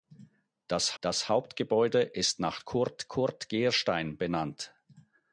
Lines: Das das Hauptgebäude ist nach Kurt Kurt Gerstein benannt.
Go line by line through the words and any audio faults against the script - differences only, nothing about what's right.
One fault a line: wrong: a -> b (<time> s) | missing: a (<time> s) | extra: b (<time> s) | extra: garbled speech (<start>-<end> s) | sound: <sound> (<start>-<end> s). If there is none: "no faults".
no faults